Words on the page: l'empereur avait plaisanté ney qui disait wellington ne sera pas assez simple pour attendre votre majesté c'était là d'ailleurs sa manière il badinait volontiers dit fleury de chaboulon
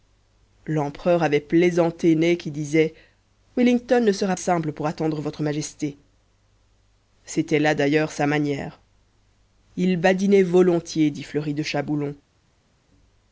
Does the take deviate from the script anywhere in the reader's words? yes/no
yes